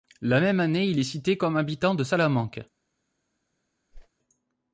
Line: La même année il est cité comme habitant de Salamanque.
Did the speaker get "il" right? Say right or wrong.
right